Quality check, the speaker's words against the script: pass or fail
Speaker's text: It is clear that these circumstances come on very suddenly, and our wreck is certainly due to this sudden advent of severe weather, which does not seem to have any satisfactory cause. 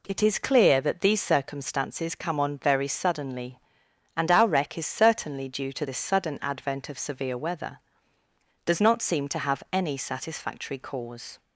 fail